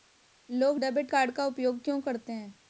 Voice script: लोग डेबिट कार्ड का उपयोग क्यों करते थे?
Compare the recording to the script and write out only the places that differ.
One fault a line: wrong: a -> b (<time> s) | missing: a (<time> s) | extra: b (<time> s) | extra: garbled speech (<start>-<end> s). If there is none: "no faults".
wrong: थे -> हैं (2.3 s)